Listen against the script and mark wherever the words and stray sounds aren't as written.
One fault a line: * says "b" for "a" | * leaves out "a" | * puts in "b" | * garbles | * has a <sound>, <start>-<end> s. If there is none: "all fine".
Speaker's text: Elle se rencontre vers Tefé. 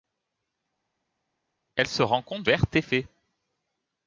all fine